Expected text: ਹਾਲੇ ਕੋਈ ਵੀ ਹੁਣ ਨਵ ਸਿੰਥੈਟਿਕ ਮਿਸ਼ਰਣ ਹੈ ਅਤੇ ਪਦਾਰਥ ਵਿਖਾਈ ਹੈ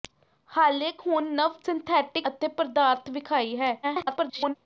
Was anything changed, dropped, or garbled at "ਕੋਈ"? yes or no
yes